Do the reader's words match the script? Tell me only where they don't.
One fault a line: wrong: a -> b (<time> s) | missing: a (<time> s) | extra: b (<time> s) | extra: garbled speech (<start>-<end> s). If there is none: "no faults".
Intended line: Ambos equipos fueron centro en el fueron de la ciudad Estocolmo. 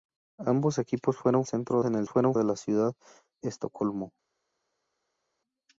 no faults